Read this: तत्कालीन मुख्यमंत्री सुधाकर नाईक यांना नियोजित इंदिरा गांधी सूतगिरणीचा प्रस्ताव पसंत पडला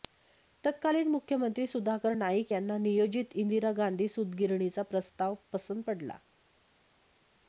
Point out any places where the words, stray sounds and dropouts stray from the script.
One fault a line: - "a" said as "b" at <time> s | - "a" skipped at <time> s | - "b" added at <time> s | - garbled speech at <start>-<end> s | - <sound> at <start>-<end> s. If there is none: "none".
none